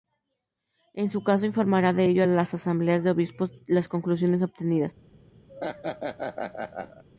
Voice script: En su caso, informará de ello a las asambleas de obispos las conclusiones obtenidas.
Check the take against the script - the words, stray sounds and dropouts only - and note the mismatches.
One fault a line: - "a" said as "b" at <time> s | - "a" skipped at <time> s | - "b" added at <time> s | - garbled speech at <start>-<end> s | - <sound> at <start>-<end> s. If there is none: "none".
- laugh at 5.5-7.0 s